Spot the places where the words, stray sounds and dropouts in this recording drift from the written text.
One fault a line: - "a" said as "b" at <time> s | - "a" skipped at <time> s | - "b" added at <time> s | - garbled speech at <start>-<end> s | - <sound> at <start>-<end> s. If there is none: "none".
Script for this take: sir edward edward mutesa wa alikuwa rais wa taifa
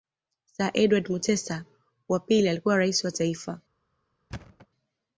- "edward" skipped at 1.1 s
- "pili" added at 2.2 s
- thud at 4.3-4.7 s